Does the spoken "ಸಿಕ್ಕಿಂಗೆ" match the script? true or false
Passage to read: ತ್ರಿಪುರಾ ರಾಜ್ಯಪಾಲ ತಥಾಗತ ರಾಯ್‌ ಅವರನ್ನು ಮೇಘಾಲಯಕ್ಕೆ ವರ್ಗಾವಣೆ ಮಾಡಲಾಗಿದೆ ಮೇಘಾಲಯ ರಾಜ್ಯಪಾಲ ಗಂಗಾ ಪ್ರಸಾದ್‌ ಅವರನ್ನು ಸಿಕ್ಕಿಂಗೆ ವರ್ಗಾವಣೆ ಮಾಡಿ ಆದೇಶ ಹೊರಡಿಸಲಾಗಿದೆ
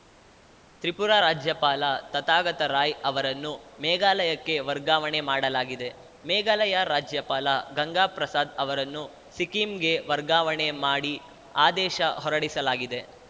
true